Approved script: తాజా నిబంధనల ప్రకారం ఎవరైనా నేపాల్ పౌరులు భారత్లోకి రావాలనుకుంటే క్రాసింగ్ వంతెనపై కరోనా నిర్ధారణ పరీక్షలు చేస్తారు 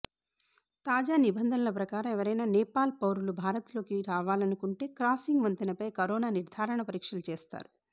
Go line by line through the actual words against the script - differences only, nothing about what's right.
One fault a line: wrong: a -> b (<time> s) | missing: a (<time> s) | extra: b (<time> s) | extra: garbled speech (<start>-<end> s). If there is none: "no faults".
no faults